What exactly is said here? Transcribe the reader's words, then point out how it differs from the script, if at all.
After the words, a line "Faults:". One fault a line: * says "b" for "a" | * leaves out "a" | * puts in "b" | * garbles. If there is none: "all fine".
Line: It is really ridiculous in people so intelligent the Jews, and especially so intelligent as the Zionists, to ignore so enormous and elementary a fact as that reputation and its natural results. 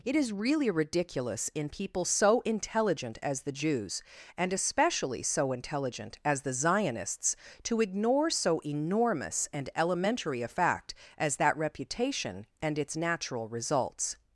It is really ridiculous in people so intelligent as the Jews, and especially so intelligent as the Zionists, to ignore so enormous and elementary a fact as that reputation and its natural results.
Faults:
* puts in "as"